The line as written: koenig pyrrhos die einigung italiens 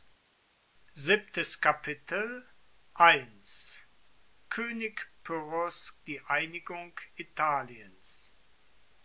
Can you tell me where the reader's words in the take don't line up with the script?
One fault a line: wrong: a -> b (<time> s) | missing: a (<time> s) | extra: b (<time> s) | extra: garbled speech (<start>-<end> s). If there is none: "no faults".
no faults